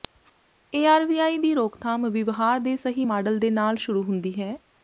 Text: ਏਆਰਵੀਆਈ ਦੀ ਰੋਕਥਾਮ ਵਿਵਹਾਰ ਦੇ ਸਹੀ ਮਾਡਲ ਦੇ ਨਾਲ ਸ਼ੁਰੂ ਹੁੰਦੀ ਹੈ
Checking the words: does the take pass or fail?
pass